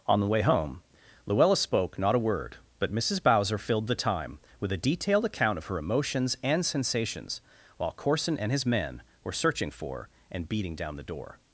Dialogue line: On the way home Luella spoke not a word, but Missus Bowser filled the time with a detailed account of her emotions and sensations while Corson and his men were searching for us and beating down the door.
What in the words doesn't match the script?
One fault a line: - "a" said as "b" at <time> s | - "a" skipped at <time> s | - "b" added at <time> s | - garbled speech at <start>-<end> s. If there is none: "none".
- "us" skipped at 10.1 s